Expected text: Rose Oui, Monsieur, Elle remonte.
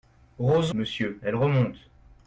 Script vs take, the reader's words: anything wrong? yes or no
yes